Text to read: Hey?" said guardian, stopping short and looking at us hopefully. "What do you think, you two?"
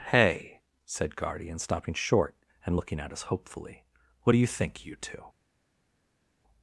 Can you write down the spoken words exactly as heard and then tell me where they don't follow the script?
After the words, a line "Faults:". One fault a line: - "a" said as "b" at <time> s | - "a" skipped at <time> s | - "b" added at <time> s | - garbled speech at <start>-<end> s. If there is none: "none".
Hey?" said guardian, stopping short and looking at us hopefully. "What do you think, you two?"
Faults:
none